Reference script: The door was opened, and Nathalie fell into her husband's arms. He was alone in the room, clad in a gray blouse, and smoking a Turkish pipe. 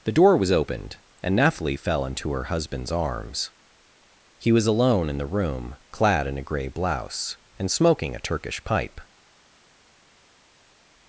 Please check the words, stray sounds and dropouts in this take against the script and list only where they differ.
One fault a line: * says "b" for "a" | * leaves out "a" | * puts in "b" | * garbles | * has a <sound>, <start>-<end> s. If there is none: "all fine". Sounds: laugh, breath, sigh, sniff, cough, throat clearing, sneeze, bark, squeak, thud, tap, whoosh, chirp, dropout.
all fine